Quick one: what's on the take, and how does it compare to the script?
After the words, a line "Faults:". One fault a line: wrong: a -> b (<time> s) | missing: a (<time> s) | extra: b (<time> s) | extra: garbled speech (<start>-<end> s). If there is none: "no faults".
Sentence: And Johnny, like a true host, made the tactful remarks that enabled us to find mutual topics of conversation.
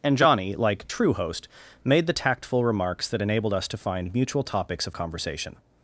And Johnny, like true host, made the tactful remarks that enabled us to find mutual topics of conversation.
Faults:
missing: a (0.9 s)